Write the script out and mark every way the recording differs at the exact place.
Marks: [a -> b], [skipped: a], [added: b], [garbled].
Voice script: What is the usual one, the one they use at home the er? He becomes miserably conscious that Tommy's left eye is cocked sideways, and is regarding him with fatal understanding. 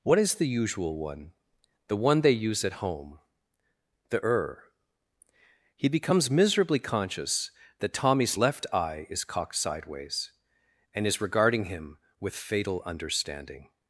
What is the usual one, the one they use at home the er? He becomes miserably conscious that Tommy's left eye is cocked sideways, and is regarding him with fatal understanding.